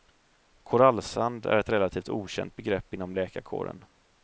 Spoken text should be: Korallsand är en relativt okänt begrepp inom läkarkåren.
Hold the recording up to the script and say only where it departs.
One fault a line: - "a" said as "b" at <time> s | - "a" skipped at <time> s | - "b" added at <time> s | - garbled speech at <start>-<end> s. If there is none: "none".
- "en" said as "ett" at 1.6 s